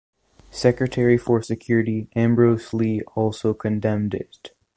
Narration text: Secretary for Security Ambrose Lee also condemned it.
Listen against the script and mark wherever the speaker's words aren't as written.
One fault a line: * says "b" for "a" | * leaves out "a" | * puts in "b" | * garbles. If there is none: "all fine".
all fine